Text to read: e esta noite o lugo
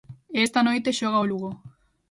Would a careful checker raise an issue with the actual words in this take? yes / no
yes